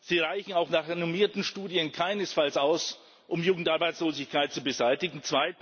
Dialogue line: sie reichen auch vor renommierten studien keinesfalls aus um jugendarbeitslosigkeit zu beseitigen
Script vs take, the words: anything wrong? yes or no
yes